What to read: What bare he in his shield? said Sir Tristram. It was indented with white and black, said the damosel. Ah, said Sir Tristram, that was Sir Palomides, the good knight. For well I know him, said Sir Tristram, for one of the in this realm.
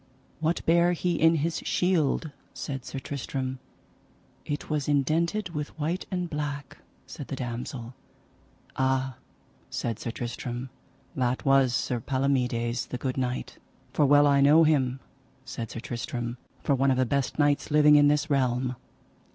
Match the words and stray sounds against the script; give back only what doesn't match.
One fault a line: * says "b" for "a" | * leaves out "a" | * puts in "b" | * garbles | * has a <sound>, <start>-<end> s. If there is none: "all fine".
* puts in "best knights living"